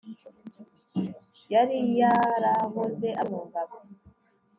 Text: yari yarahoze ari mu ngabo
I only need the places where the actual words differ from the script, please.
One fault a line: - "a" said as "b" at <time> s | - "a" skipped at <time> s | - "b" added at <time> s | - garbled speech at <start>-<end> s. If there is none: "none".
none